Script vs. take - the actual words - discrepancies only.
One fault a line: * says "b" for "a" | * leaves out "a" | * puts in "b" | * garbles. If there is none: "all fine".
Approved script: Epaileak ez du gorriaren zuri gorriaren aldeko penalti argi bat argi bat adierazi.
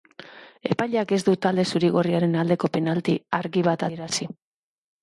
* says "talde" for "gorriaren"
* leaves out "argi bat"